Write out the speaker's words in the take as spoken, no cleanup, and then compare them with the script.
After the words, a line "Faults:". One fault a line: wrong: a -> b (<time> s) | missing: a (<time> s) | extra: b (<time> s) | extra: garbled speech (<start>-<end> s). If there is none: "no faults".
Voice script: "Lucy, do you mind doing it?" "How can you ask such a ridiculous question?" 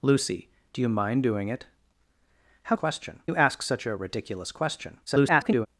"Lucy, do you mind doing it?" "How question you ask such a ridiculous question?" [garbled]
Faults:
wrong: can -> question (2.7 s)
extra: garbled speech (5.1-5.7 s)